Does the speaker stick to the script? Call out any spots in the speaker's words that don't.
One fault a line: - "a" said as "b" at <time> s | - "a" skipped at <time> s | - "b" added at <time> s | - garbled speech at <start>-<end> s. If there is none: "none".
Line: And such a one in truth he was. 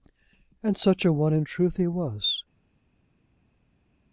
none